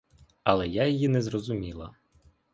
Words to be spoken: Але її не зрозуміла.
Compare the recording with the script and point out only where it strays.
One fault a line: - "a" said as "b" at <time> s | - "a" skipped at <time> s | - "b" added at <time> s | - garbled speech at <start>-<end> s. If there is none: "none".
- "я" added at 0.7 s